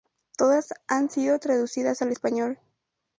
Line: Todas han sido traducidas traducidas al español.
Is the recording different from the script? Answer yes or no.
yes